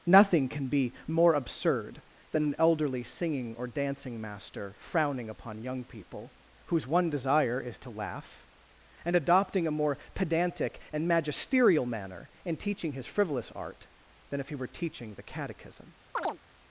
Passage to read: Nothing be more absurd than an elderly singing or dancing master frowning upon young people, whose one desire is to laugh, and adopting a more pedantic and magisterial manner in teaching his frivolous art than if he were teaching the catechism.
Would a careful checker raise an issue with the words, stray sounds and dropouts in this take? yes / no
yes